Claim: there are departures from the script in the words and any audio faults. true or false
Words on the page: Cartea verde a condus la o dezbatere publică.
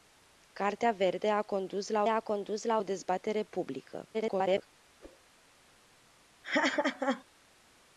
true